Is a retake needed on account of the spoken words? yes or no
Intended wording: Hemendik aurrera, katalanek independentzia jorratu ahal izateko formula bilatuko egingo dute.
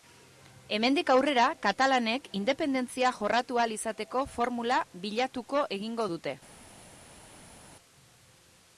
no